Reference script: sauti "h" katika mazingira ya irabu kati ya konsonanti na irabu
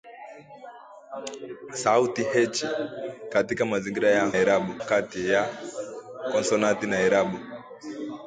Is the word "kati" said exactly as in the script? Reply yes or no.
yes